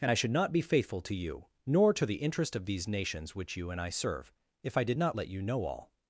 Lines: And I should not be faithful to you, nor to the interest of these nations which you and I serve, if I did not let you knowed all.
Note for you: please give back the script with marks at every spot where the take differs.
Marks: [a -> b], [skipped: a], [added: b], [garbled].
And I should not be faithful to you, nor to the interest of these nations which you and I serve, if I did not let you [knowed -> know] all.